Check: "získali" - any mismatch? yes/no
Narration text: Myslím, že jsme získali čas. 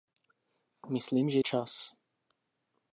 yes